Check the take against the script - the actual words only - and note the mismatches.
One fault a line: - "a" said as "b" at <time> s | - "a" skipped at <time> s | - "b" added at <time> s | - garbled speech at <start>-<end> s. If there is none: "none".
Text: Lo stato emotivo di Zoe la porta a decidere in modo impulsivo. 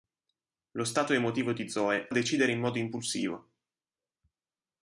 - "la porta" skipped at 2.1 s